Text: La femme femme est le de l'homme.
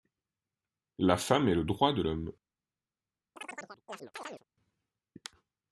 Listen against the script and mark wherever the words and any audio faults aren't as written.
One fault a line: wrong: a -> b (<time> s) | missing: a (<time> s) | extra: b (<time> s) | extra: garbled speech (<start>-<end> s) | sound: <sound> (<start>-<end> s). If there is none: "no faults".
missing: femme (1.5 s)
extra: droit (1.6 s)
sound: chirp (3.4-4.4 s)